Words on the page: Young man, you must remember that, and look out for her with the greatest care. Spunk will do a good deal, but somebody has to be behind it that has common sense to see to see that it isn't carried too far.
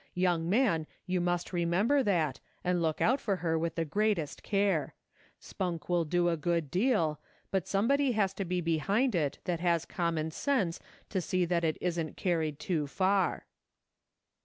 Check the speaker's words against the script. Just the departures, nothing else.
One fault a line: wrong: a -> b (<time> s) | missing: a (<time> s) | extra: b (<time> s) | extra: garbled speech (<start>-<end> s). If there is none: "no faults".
missing: to see (11.4 s)